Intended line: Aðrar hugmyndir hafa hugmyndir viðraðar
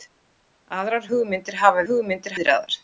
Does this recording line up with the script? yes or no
yes